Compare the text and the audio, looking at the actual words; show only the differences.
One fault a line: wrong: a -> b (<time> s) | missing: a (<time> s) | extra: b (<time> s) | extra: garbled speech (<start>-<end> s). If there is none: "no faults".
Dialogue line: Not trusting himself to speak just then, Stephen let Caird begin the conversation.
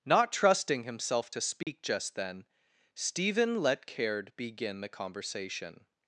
no faults